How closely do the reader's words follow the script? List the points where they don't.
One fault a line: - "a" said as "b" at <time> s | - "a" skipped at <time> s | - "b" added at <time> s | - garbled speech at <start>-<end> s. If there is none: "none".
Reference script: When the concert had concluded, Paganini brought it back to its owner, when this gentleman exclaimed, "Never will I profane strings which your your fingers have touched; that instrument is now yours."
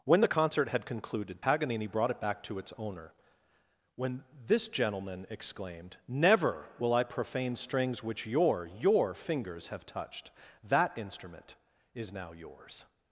none